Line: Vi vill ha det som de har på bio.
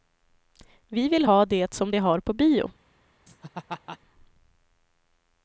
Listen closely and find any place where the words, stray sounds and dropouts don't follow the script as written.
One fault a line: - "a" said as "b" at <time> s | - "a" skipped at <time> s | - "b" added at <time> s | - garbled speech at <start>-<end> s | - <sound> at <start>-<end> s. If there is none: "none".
- laugh at 3.3-4.0 s